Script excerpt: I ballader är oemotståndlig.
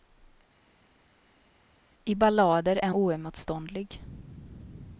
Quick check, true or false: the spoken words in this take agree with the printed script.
true